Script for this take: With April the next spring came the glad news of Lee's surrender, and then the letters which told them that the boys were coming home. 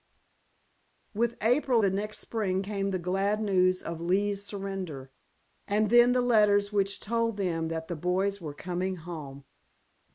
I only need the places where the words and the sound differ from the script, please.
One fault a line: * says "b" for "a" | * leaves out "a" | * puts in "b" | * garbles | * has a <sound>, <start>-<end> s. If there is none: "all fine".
all fine